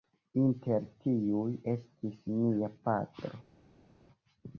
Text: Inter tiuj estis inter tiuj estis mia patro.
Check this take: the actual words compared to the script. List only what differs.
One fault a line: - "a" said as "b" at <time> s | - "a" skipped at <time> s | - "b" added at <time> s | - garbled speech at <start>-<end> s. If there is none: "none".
- "inter tiuj estis" skipped at 2.2 s